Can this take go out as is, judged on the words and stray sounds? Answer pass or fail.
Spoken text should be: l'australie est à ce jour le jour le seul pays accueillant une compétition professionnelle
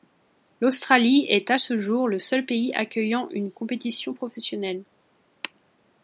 fail